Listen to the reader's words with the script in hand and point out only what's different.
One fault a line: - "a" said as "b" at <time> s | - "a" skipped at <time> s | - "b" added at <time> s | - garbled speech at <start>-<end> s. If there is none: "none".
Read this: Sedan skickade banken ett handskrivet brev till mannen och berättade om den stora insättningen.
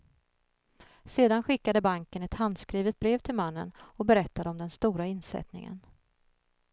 none